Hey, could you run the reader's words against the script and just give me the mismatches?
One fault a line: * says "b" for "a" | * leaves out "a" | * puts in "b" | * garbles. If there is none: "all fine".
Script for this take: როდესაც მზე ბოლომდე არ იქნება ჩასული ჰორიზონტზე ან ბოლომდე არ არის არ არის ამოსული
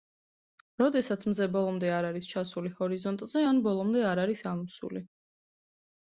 * says "არის" for "იქნება"
* leaves out "არ არის"